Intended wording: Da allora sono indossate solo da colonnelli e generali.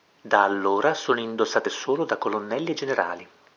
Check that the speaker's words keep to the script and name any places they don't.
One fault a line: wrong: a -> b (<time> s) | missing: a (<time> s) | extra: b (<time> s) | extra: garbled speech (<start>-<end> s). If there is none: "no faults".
no faults